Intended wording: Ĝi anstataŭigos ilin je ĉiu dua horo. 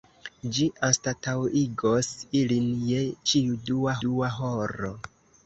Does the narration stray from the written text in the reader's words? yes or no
yes